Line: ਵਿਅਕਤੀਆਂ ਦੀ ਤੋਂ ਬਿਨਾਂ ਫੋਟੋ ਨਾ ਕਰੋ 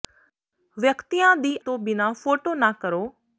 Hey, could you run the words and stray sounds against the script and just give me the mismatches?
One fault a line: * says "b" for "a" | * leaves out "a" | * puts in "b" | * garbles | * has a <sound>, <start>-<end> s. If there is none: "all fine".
all fine